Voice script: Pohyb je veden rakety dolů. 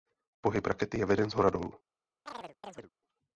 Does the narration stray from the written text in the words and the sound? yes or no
yes